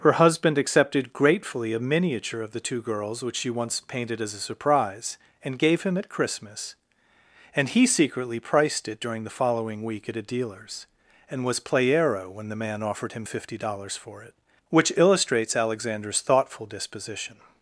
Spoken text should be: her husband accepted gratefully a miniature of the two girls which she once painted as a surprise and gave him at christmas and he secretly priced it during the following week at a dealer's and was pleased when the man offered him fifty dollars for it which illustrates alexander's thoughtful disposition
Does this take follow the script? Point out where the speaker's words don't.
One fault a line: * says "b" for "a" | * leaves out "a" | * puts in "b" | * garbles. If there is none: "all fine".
* says "playero" for "pleased"